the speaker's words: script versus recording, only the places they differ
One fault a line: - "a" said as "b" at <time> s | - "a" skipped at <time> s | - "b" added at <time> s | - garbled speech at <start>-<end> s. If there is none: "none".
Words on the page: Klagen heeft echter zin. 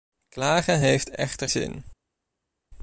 none